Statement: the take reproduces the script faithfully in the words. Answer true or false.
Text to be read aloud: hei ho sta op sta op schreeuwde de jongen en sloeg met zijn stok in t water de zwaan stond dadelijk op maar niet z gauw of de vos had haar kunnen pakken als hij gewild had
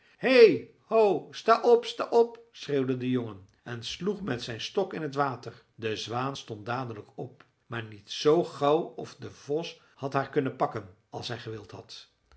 true